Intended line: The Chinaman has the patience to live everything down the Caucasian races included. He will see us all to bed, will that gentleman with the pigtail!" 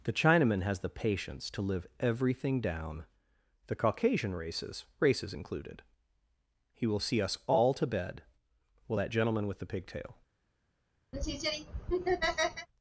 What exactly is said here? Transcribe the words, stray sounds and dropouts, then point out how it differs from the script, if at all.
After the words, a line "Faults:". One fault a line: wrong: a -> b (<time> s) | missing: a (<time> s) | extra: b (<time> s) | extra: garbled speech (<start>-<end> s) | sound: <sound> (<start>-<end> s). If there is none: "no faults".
The Chinaman has the patience to live everything down the Caucasian races races included. He will see us all to bed, will that gentleman with the pigtail!"
Faults:
extra: races (5.0 s)
sound: laugh (11.1-12.7 s)